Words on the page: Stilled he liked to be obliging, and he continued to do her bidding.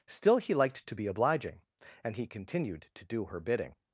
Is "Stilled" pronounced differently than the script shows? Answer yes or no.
yes